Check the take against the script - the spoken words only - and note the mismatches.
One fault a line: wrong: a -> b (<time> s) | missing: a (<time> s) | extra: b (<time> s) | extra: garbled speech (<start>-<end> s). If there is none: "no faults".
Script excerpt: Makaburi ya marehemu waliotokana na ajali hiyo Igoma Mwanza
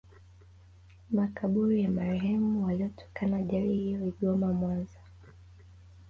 missing: na (3.4 s)